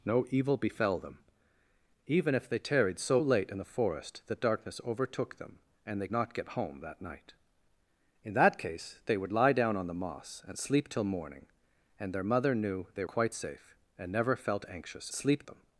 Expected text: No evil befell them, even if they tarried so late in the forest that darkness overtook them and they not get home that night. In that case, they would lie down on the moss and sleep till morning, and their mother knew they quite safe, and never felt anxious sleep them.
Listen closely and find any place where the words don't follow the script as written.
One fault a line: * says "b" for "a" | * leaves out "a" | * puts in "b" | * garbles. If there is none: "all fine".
all fine